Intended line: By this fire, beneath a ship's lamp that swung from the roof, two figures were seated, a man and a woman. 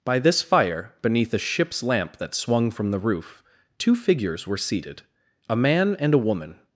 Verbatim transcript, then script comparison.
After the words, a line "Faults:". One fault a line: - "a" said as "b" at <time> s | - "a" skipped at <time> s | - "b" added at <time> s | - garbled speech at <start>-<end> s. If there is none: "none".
By this fire, beneath a ship's lamp that swung from the roof, two figures were seated, a man and a woman.
Faults:
none